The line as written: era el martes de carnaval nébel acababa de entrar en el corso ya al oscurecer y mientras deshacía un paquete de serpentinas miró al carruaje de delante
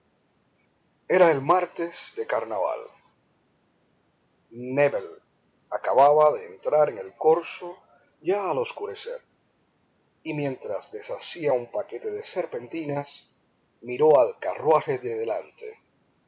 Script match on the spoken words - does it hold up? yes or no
yes